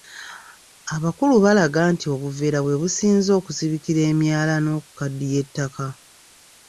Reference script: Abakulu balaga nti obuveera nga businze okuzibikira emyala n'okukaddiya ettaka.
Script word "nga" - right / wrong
wrong